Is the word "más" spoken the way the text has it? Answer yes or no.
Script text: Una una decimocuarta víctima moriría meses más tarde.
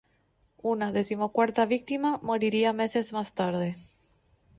yes